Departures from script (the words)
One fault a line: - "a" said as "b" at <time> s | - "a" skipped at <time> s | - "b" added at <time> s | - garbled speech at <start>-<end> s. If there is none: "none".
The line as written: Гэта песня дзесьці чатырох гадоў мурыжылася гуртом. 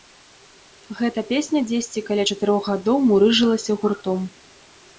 - "каля" added at 2.1 s